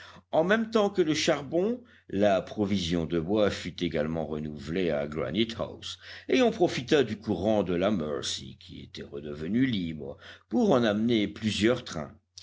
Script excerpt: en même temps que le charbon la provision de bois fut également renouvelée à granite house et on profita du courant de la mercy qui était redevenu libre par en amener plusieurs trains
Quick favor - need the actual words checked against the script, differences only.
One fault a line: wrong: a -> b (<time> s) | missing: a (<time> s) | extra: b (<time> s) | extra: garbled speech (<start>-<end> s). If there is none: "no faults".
wrong: par -> pour (10.5 s)